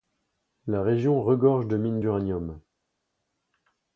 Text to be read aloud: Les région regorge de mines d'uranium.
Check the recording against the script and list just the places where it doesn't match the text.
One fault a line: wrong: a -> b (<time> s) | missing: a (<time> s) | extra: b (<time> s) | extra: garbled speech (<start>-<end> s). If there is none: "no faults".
wrong: Les -> La (0.7 s)